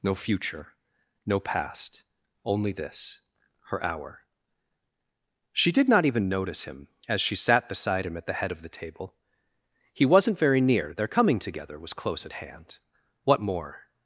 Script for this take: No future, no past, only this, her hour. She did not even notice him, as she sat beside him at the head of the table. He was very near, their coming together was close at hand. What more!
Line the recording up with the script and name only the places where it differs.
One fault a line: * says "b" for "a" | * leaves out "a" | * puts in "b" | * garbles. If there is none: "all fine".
* says "wasn't" for "was"